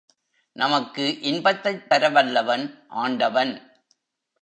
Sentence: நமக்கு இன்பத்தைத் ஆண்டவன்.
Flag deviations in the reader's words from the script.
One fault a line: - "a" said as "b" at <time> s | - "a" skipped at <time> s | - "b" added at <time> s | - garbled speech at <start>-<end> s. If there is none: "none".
- "தரவல்லவன்" added at 1.9 s